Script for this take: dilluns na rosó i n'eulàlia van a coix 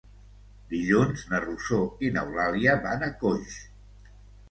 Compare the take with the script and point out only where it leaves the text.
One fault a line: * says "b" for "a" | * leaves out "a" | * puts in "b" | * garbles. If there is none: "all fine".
all fine